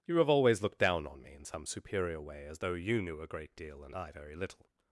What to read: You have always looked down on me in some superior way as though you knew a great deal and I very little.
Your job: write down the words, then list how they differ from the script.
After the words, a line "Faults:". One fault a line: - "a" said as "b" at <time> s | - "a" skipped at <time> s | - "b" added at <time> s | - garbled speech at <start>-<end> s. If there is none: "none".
You have always looked down on me in some superior way as though you knew a great deal and I very little.
Faults:
none